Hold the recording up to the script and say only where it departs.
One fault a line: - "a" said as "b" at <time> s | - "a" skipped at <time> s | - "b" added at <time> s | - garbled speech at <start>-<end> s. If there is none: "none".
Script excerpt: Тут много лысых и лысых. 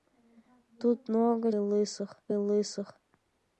none